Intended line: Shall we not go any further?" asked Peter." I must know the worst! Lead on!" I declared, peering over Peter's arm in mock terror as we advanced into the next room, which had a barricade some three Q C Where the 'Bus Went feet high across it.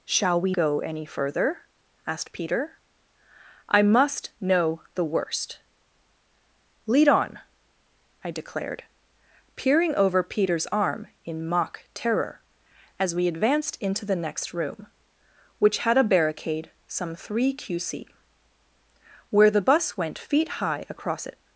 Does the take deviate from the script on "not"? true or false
true